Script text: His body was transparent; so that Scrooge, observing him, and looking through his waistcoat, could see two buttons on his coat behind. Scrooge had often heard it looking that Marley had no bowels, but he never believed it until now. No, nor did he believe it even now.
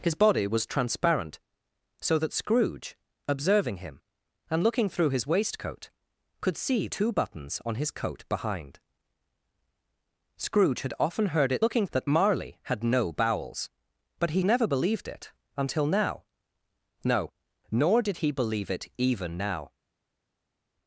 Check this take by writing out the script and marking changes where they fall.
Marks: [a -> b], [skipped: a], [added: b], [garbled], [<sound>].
His body was transparent; so that Scrooge, observing him, and looking through his waistcoat, could see two buttons on his coat behind. Scrooge had often heard it looking that Marley had no bowels, but he never believed it until now. No, nor did he believe it even now.